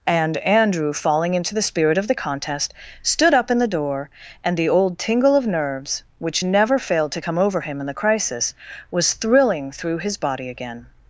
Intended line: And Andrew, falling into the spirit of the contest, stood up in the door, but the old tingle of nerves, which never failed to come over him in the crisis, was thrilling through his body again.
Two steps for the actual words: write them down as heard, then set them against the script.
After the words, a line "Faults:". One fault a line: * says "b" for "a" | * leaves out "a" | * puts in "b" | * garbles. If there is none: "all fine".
And Andrew, falling into the spirit of the contest, stood up in the door, and the old tingle of nerves, which never failed to come over him in the crisis, was thrilling through his body again.
Faults:
* says "and" for "but"